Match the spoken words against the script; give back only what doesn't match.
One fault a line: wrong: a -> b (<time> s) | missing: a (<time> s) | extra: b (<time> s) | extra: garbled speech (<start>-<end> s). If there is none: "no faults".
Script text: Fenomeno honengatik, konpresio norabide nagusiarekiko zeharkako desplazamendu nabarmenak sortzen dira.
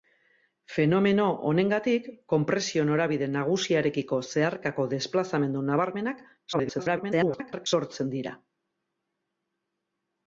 extra: garbled speech (6.5-7.7 s)